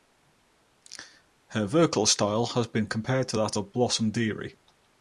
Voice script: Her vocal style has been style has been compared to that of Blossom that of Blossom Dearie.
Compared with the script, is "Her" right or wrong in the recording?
right